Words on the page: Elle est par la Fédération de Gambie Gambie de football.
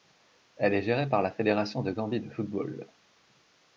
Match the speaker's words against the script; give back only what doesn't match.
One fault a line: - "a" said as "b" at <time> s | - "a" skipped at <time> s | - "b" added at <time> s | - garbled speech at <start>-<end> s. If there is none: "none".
- "gérée" added at 0.8 s
- "Gambie" skipped at 2.2 s